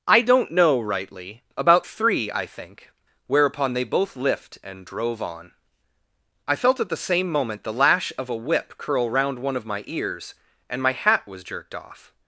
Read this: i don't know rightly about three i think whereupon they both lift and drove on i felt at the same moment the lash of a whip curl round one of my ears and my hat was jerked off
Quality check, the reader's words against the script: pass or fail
pass